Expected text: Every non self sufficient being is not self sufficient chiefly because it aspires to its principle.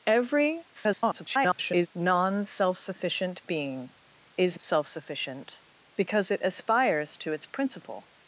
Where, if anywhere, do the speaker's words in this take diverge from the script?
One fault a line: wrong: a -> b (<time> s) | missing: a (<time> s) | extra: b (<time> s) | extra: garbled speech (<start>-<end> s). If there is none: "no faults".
extra: garbled speech (0.7-1.9 s)
missing: not (4.6 s)
missing: chiefly (5.6 s)